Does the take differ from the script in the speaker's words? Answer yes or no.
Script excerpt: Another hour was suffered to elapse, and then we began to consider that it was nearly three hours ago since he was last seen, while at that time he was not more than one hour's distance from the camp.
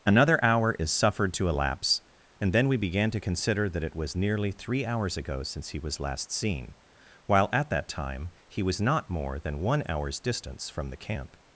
yes